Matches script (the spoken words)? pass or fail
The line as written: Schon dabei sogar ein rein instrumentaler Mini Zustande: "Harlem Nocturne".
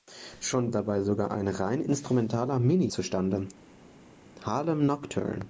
pass